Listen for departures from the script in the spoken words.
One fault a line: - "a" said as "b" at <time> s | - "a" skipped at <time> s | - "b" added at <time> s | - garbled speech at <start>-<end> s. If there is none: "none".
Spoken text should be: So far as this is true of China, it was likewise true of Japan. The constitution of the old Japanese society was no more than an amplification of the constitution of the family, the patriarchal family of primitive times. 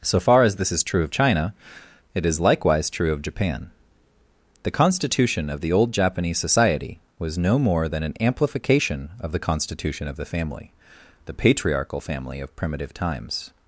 - "was" said as "is" at 2.2 s